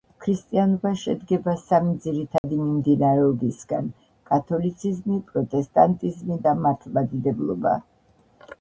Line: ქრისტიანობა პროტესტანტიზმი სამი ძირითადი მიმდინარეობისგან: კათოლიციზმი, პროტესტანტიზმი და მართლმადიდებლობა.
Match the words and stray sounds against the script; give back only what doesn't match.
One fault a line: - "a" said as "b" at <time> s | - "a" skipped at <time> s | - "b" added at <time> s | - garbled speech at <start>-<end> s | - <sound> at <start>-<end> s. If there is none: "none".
- "პროტესტანტიზმი" said as "შედგება" at 1.0 s
- dropout at 2.4-2.4 s